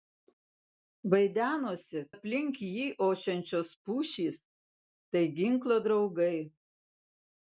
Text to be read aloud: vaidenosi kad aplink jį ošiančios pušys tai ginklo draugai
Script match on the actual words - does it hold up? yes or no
no